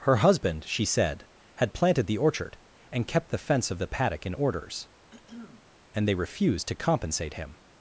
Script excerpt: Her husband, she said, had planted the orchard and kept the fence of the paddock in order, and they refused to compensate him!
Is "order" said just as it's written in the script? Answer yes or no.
no